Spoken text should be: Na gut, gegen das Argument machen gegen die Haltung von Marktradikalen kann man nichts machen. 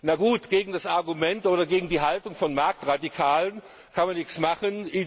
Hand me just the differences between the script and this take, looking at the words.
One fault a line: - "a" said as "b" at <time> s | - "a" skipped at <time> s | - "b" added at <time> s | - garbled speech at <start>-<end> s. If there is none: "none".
- "machen" said as "oder" at 1.5 s